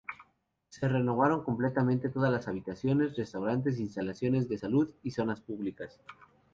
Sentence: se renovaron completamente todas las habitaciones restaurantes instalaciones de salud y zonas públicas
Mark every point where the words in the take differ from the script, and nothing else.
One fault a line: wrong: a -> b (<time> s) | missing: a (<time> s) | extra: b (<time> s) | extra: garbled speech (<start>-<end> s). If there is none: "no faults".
no faults